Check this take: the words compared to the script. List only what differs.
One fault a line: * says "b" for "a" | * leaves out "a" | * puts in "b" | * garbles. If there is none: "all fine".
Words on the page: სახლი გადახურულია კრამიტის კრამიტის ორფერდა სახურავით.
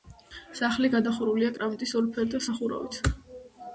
* leaves out "კრამიტის"